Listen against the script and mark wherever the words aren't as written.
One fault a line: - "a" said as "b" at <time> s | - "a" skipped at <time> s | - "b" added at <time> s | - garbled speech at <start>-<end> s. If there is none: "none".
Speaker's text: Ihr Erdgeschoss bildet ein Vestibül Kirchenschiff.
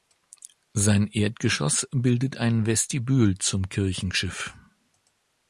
- "Ihr" said as "Sein" at 0.7 s
- "zum" added at 3.4 s